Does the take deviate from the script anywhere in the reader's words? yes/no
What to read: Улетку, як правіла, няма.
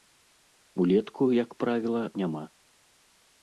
no